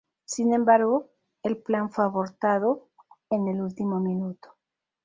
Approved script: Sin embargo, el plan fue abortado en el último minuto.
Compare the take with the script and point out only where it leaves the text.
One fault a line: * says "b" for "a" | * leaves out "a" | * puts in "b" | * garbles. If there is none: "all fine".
all fine